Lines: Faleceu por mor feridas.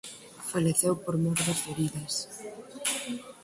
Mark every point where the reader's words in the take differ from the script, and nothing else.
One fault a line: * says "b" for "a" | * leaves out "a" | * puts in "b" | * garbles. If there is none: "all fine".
* puts in "das"